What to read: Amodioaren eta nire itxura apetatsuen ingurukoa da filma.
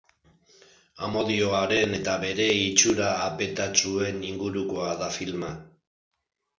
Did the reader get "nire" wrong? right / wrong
wrong